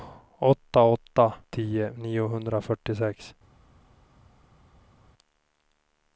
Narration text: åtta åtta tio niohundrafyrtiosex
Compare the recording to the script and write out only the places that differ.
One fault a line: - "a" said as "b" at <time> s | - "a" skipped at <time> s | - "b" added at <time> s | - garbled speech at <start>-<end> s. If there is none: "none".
none